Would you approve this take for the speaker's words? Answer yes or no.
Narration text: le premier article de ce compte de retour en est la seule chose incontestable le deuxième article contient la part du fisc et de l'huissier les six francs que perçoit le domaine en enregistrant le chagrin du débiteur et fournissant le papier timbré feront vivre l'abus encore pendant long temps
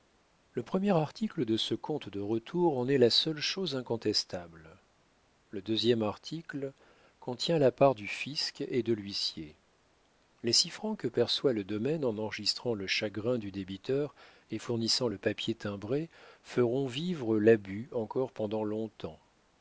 yes